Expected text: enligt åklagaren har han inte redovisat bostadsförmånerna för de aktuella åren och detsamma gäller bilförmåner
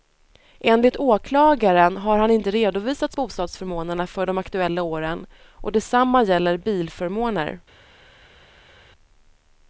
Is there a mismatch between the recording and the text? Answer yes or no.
no